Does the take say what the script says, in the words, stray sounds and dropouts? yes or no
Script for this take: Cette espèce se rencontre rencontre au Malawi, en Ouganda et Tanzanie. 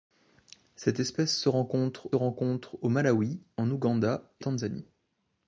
yes